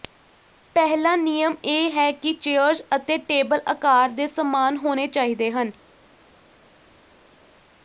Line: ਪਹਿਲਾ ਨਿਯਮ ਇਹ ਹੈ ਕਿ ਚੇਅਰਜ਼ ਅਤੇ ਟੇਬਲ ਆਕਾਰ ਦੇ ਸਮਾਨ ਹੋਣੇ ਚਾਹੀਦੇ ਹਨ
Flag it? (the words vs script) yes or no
no